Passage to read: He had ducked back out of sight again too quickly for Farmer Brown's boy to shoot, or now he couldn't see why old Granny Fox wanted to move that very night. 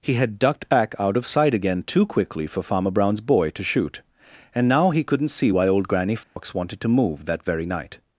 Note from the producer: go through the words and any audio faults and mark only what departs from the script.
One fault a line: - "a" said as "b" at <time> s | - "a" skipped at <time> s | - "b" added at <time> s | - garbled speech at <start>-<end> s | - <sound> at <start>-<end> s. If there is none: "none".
- "or" said as "and" at 4.5 s
- dropout at 6.2-6.4 s